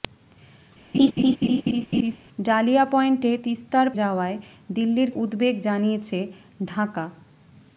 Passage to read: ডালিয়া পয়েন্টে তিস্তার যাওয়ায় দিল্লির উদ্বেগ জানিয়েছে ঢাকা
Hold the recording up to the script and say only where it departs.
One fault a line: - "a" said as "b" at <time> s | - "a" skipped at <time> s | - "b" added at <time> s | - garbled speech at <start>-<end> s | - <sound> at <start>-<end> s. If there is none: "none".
- laugh at 0.9-2.2 s